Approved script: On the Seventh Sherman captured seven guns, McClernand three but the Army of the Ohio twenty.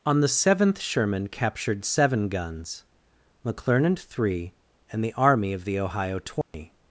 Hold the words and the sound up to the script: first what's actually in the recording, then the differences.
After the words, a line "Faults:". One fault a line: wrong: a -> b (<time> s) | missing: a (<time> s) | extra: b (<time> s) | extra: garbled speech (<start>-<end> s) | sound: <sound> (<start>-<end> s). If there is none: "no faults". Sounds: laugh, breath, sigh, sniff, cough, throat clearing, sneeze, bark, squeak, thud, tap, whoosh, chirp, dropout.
On the Seventh Sherman captured seven guns, McClernand three and the Army of the Ohio twenty.
Faults:
wrong: but -> and (4.9 s)
sound: dropout (6.4-6.5 s)